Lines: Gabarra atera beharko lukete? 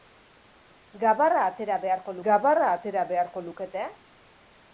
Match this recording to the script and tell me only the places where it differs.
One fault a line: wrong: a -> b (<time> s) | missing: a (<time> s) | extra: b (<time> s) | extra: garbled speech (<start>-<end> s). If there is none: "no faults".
extra: gabarra atera beharko (2.3 s)